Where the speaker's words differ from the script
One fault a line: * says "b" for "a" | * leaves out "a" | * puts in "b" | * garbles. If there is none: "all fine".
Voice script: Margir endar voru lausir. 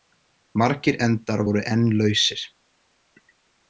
* puts in "enn"